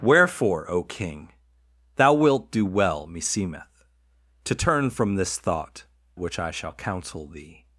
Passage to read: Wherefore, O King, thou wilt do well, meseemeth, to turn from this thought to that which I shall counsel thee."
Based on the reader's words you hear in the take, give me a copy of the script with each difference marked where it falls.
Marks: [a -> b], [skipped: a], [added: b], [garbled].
Wherefore, O King, thou wilt do well, meseemeth, to turn from this thought [skipped: to that] which I shall counsel thee."